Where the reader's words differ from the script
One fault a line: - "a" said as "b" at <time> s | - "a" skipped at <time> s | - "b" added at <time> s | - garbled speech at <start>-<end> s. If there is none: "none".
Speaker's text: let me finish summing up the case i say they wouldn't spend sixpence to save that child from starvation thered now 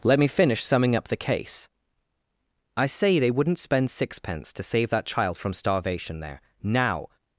- "thered" said as "there" at 6.2 s